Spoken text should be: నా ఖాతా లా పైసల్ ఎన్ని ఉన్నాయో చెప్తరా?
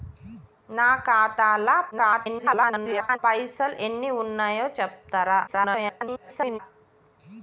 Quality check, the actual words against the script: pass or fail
fail